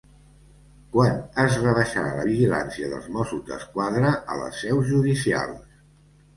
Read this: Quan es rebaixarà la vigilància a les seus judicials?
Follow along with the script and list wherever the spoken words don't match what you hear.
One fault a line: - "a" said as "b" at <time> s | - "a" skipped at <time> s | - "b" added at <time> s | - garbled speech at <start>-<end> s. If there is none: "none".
- "dels Mossos d'Esquadra" added at 2.9 s